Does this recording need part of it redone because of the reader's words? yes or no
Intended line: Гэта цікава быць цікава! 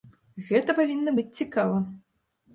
yes